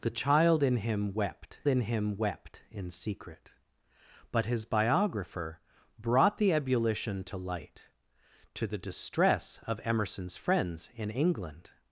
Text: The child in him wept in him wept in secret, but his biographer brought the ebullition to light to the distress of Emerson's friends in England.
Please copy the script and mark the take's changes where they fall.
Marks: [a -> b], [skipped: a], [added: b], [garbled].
The child in him wept in him wept in secret, but his biographer brought the ebullition to light to the distress of Emerson's friends in England.